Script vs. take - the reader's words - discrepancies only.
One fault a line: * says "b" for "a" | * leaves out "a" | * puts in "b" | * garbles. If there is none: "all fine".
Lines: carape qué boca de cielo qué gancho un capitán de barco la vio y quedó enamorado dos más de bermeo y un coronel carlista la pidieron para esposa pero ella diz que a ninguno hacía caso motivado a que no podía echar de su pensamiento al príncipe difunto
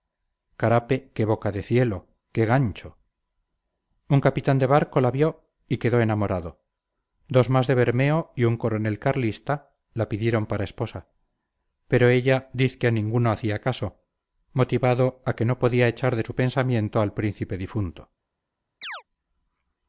all fine